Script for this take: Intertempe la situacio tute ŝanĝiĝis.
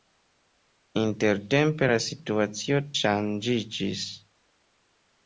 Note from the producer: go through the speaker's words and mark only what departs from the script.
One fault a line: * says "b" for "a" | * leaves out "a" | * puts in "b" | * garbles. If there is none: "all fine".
* leaves out "tute"